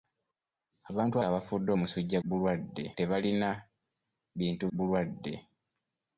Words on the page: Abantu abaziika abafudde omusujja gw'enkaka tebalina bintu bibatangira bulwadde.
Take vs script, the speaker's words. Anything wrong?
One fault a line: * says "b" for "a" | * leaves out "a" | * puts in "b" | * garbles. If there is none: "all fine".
* leaves out "abaziika"
* says "bulwadde" for "gw'enkaka"
* leaves out "bibatangira"